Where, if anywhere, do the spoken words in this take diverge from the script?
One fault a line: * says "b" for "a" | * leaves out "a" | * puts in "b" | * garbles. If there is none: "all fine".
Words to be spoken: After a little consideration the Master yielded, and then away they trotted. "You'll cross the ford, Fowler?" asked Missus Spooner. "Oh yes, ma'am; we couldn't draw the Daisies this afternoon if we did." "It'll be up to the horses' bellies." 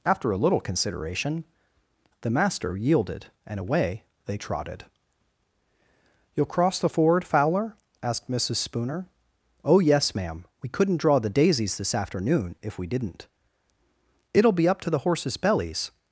* leaves out "then"
* says "didn't" for "did"